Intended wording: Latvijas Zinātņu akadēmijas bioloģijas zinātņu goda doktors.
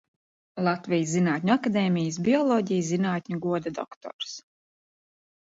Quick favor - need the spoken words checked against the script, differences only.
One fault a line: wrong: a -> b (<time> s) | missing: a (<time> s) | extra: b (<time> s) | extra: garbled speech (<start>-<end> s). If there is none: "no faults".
no faults